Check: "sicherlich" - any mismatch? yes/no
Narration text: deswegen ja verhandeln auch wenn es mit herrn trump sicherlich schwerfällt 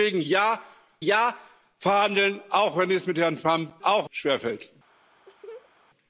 yes